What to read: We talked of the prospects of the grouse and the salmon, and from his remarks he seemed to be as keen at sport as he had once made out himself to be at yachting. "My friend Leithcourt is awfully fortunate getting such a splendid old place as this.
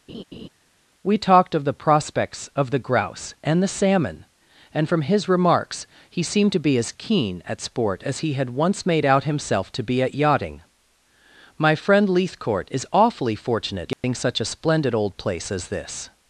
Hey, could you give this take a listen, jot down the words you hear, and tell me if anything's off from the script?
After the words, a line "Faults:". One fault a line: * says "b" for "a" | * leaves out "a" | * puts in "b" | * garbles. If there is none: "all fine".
We talked of the prospects of the grouse and the salmon, and from his remarks he seemed to be as keen at sport as he had once made out himself to be at yachting. "My friend Leithcourt is awfully fortunate getting such a splendid old place as this.
Faults:
all fine